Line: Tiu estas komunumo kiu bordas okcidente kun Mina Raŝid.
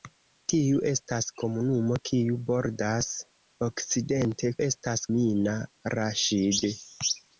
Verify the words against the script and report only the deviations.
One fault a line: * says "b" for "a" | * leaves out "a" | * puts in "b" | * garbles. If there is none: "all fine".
* says "estas" for "kun"